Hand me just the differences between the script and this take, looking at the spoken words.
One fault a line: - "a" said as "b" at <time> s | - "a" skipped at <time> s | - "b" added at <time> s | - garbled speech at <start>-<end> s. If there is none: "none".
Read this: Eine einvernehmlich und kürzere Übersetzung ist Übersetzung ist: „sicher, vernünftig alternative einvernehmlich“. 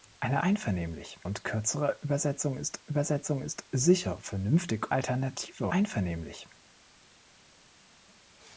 none